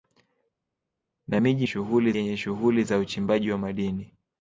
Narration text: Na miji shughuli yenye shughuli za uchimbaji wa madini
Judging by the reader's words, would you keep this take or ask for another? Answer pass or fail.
pass